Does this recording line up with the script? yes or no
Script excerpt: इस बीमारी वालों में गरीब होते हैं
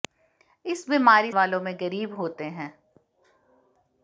yes